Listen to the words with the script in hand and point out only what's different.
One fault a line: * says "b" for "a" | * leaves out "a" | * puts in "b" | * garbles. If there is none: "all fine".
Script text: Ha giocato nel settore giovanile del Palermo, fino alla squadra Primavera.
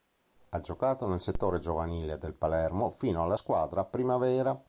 all fine